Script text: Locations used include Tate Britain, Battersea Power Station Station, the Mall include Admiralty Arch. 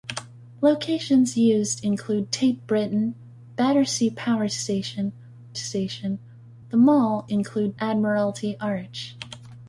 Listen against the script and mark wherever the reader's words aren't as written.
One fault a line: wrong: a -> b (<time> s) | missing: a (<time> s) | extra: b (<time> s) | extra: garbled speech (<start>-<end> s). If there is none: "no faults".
no faults